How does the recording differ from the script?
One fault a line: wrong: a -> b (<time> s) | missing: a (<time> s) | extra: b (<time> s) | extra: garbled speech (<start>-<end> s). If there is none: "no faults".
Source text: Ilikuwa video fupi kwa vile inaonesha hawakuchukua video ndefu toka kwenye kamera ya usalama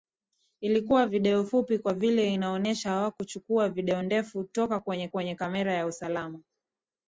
extra: kwenye (5.1 s)